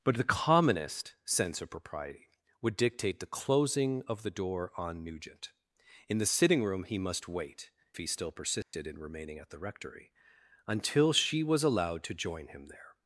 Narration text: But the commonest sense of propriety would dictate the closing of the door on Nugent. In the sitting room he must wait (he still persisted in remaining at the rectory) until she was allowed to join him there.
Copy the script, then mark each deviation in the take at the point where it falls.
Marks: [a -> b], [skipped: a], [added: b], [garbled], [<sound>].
But the commonest sense of propriety would dictate the closing of the door on Nugent. In the sitting room he must wait (he still persisted [dropout] in remaining at the rectory) until she was allowed to join him there.